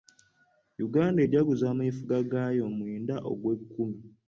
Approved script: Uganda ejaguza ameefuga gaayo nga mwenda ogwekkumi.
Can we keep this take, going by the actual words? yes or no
no